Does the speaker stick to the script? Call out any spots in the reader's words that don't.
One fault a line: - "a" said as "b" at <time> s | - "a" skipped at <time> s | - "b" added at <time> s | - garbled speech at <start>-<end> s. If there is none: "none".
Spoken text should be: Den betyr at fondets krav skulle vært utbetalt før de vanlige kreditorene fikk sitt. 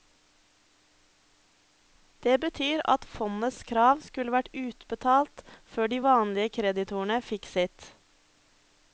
- "Den" said as "Det" at 2.2 s